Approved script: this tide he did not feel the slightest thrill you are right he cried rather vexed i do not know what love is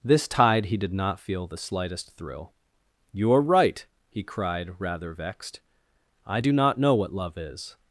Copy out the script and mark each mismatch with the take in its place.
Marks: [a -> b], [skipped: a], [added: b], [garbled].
this tide he did not feel the slightest thrill you are right he cried rather vexed i do not know what love is